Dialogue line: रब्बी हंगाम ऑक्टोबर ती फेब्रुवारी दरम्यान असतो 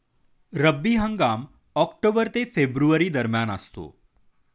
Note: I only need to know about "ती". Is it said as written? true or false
false